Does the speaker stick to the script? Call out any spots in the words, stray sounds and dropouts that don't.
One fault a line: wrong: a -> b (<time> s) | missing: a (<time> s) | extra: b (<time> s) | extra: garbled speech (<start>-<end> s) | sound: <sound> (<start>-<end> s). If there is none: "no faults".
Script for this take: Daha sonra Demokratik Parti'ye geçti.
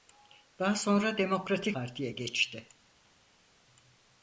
no faults